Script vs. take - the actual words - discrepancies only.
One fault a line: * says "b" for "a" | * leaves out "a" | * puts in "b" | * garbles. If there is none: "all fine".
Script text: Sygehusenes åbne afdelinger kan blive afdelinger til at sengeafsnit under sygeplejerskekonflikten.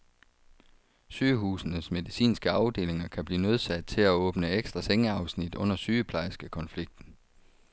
* says "medicinske" for "åbne"
* says "nødsaget" for "afdelinger"
* puts in "åbne ekstra"